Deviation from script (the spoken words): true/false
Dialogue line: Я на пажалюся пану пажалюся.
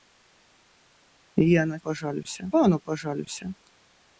false